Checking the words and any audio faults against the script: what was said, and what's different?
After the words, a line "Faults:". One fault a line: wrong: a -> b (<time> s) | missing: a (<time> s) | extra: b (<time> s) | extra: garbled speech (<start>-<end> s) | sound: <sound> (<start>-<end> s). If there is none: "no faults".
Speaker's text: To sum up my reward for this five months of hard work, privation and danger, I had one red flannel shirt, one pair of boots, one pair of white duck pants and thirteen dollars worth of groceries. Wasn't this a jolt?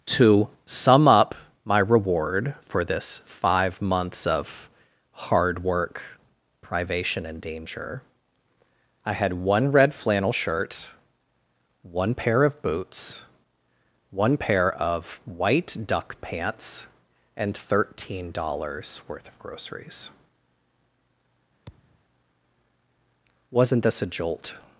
To sum up my reward for this five months of hard work, privation and danger, I had one red flannel shirt, one pair of boots, one pair of white duck pants and thirteen dollars worth of groceries. Wasn't this a jolt?
Faults:
sound: thud (21.7-22.0 s)